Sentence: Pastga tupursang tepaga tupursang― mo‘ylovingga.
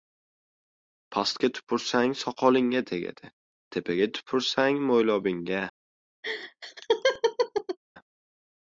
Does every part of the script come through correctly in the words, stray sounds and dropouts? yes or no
no